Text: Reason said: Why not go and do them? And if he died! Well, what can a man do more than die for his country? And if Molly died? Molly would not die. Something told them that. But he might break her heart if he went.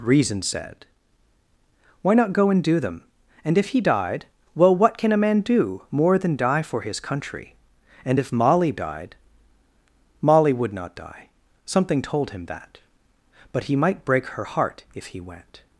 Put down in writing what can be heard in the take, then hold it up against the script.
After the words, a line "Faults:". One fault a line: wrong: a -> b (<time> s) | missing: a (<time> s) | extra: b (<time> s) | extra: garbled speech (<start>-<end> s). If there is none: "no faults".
Reason said: Why not go and do them? And if he died! Well, what can a man do more than die for his country? And if Molly died? Molly would not die. Something told him that. But he might break her heart if he went.
Faults:
wrong: them -> him (12.3 s)